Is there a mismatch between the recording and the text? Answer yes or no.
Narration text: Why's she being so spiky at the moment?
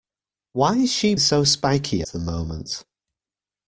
yes